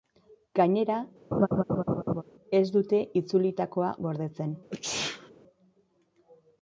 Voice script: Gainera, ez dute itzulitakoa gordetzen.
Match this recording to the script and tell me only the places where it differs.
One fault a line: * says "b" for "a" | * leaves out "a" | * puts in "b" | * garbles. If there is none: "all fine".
all fine